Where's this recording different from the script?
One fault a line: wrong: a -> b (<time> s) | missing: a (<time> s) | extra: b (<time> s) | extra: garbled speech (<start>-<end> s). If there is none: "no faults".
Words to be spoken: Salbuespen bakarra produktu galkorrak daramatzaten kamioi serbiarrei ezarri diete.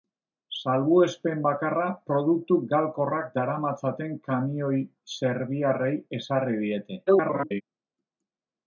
extra: garbled speech (7.1-7.6 s)